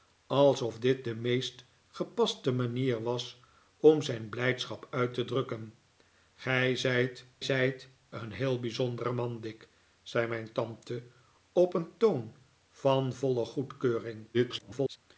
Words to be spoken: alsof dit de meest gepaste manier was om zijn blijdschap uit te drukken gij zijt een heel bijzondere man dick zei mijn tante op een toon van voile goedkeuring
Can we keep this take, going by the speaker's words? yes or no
no